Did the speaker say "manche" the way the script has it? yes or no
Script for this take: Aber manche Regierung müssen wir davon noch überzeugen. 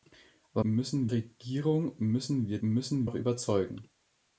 no